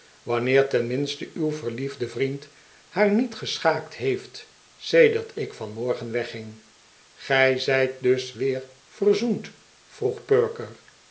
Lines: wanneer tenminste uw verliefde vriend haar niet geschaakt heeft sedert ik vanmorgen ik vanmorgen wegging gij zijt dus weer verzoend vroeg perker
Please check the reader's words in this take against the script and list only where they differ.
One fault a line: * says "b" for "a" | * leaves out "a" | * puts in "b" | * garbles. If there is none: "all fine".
* leaves out "ik vanmorgen"